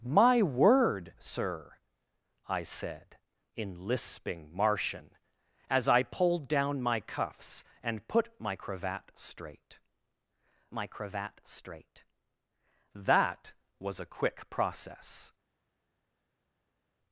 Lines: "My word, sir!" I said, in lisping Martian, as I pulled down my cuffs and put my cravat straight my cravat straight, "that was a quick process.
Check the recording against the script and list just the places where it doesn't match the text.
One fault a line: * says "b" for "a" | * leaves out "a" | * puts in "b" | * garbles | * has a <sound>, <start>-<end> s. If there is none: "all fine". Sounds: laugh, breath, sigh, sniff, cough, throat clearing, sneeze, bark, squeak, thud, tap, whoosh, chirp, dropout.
all fine